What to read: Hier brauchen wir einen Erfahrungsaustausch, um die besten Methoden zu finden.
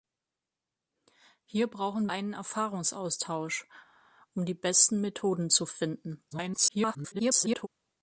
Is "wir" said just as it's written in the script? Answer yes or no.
no